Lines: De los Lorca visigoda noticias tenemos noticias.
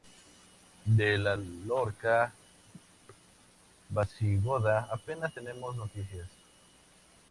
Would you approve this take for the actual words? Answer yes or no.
no